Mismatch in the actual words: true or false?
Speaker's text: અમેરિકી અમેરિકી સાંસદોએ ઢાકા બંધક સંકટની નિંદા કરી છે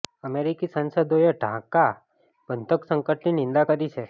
true